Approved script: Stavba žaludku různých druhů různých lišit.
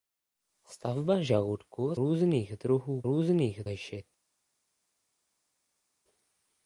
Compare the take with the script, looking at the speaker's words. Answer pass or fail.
pass